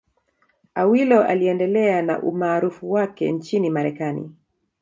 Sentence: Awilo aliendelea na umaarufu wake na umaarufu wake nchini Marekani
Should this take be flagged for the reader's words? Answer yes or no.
yes